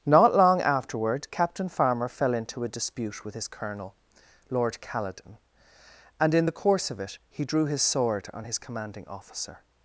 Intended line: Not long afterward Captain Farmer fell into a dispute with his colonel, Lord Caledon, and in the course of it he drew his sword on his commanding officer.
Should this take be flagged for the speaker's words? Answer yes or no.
no